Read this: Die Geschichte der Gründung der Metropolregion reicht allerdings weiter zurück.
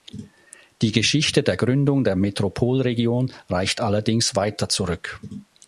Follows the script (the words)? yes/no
yes